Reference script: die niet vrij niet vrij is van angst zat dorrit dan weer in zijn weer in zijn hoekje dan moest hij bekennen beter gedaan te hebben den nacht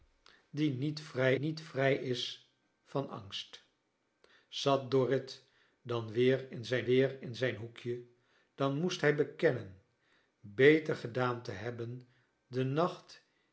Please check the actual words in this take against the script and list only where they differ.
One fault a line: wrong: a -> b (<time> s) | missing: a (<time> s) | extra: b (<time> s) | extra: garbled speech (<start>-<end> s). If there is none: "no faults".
no faults